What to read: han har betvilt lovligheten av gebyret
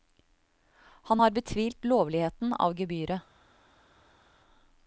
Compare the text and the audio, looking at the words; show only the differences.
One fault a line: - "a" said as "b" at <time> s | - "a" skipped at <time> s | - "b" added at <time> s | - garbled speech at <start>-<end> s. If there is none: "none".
none